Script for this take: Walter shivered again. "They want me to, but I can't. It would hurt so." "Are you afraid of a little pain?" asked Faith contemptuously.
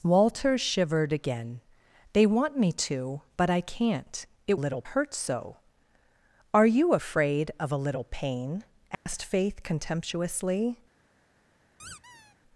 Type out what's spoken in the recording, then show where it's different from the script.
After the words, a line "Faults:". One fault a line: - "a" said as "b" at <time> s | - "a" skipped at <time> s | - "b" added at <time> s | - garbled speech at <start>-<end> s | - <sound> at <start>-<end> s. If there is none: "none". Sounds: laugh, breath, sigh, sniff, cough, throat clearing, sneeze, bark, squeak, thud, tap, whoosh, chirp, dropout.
Walter shivered again. "They want me to, but I can't. It little hurt so." "Are you afraid of a little pain?" asked Faith contemptuously.
Faults:
- "would" said as "little" at 4.6 s
- dropout at 8.9-9.1 s
- squeak at 11.8-12.4 s